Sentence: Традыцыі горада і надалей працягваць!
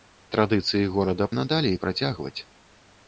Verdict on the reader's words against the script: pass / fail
pass